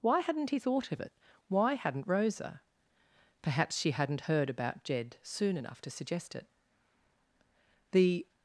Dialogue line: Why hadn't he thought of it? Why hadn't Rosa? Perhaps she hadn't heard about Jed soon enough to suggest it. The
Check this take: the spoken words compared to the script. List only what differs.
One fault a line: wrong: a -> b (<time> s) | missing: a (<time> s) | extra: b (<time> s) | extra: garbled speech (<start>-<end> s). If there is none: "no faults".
no faults